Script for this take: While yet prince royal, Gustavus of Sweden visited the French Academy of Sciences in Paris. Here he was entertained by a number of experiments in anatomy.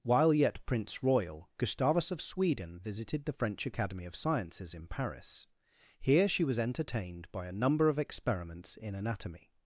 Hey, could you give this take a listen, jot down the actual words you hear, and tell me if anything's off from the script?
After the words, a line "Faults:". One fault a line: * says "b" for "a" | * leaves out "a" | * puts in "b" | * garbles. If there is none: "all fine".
While yet prince royal, Gustavus of Sweden visited the French Academy of Sciences in Paris. Here she was entertained by a number of experiments in anatomy.
Faults:
* says "she" for "he"